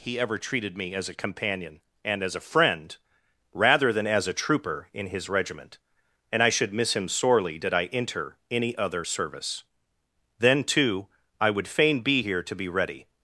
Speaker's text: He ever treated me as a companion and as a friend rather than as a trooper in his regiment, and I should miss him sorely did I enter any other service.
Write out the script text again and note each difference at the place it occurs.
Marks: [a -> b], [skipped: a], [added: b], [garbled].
He ever treated me as a companion and as a friend rather than as a trooper in his regiment, and I should miss him sorely did I enter any other service. [added: Then too I would fain be here to be ready]